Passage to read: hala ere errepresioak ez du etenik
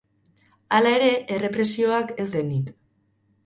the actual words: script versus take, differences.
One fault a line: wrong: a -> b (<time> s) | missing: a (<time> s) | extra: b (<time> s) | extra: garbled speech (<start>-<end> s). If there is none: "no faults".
missing: du (2.3 s)